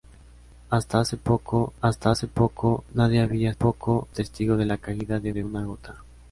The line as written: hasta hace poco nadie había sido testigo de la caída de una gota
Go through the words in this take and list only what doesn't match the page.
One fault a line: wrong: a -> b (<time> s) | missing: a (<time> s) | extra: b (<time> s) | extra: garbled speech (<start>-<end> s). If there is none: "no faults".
extra: hasta hace poco (1.8 s)
wrong: sido -> poco (3.5 s)
extra: de (5.3 s)